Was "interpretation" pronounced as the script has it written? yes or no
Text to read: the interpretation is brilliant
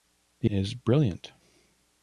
no